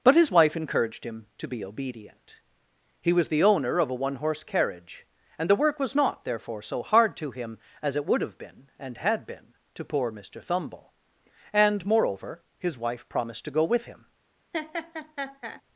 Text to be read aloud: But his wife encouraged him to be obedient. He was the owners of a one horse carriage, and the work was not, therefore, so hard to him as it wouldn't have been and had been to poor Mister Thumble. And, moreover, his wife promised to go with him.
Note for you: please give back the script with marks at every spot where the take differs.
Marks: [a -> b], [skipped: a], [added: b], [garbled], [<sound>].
But his wife encouraged him to be obedient. He was the [owners -> owner] of a one horse carriage, and the work was not, therefore, so hard to him as it [wouldn't -> would] have been and had been to poor Mister Thumble. And, moreover, his wife promised to go with him. [laugh]